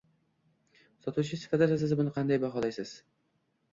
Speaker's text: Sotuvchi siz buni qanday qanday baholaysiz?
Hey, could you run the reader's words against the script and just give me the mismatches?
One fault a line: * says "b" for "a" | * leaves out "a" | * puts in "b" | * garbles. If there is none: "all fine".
* puts in "sifatida"
* leaves out "qanday"